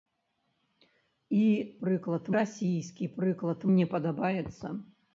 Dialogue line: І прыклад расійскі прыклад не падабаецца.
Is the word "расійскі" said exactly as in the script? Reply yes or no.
yes